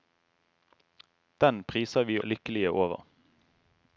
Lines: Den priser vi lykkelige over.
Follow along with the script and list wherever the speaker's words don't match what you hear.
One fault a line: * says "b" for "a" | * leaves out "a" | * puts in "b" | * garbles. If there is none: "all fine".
all fine